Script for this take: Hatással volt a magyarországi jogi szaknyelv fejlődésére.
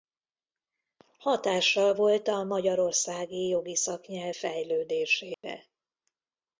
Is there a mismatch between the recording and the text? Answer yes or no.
no